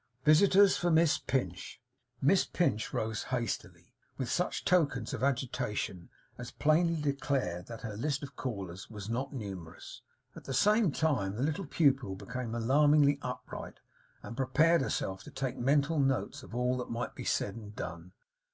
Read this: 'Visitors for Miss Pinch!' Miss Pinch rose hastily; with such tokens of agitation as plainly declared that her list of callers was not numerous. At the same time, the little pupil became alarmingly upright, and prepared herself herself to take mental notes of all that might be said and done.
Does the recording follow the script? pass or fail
fail